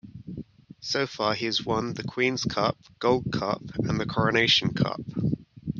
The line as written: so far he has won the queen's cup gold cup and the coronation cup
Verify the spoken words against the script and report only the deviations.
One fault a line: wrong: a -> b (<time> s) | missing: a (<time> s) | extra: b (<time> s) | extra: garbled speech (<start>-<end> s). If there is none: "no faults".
no faults